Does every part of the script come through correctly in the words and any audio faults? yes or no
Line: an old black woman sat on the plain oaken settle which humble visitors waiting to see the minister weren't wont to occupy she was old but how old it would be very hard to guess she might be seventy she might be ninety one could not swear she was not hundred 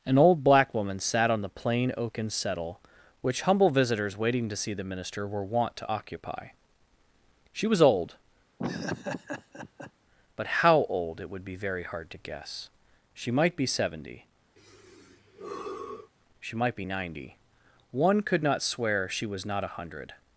no